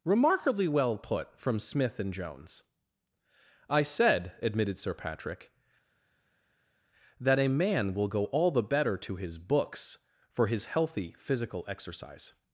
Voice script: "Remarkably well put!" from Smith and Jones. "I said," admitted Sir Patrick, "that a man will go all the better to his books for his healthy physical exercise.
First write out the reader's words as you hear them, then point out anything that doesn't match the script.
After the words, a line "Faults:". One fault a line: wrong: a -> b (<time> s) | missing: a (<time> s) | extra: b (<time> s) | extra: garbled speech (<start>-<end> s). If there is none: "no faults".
"Remarkably well put!" from Smith and Jones. "I said," admitted Sir Patrick, "that a man will go all the better to his books for his healthy physical exercise.
Faults:
no faults